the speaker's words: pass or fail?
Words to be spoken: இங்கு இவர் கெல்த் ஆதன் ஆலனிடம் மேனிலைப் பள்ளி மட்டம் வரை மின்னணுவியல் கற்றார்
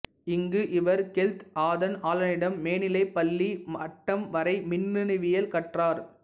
pass